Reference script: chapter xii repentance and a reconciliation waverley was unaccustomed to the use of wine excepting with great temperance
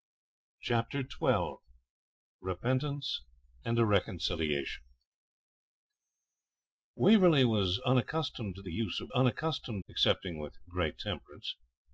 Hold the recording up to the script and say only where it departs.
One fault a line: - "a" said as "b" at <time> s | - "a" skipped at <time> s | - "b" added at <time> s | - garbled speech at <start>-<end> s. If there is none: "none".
- "wine" said as "unaccustomed" at 9.1 s